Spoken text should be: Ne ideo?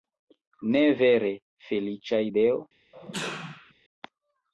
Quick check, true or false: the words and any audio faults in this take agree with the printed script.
false